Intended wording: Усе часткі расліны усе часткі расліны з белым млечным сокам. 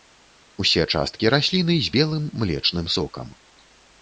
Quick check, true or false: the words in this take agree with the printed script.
false